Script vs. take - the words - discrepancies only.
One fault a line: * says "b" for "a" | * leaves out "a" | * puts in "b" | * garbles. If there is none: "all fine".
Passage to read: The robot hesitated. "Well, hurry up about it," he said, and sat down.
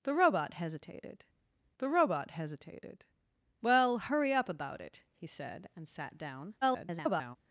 * puts in "the robot hesitated"
* garbles